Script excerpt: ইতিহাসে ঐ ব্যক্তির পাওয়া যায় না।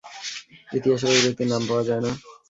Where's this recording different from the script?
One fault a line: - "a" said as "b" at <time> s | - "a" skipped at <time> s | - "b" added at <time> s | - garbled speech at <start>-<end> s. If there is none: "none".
- "নাম" added at 1.5 s